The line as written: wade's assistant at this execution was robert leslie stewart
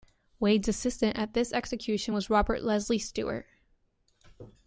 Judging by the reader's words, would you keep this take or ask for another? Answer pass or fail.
pass